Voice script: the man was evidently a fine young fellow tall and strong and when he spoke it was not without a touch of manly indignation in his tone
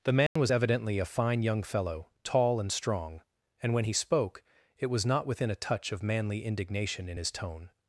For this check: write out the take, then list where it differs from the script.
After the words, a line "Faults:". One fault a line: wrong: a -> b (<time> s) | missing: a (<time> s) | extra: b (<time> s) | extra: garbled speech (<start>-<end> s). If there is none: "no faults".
the man was evidently a fine young fellow tall and strong and when he spoke it was not within a touch of manly indignation in his tone
Faults:
wrong: without -> within (5.2 s)